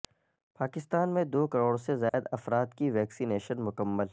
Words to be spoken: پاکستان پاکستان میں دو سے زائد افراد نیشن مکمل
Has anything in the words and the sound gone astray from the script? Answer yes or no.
yes